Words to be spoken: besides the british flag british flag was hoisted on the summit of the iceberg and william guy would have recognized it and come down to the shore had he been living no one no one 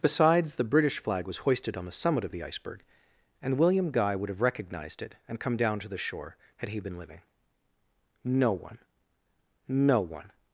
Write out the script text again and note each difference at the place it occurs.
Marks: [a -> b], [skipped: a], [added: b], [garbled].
besides the british flag [skipped: british flag] was hoisted on the summit of the iceberg and william guy would have recognized it and come down to the shore had he been living no one no one